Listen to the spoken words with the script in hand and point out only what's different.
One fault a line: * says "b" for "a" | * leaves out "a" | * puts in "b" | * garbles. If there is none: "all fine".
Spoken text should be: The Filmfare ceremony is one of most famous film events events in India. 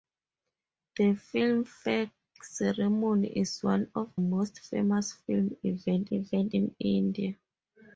all fine